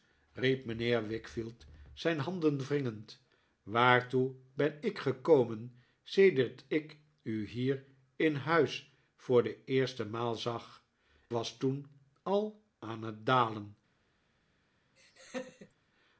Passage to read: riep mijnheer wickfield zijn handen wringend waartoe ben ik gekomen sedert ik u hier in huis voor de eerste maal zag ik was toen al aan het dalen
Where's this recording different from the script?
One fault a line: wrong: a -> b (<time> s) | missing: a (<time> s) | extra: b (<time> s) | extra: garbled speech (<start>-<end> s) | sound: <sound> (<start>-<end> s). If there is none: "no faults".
missing: ik (10.8 s)
sound: laugh (15.0-15.7 s)